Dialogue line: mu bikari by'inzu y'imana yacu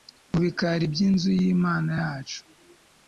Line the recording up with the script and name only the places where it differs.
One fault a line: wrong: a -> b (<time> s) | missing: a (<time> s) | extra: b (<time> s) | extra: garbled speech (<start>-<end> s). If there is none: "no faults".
no faults